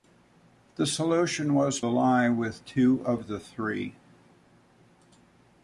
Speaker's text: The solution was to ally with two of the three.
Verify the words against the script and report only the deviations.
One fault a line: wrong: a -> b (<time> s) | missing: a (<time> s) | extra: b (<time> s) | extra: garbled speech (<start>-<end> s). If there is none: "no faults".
missing: to (1.8 s)